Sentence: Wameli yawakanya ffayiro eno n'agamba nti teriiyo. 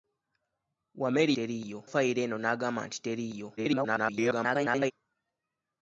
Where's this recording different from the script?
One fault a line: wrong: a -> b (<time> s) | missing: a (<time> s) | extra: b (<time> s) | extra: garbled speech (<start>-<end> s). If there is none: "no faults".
wrong: yawakanya -> teriiyo (1.4 s)
extra: garbled speech (3.6-4.9 s)